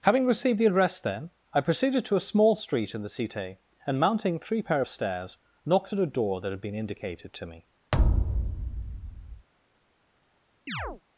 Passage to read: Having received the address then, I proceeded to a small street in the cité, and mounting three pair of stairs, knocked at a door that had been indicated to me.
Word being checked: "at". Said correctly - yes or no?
yes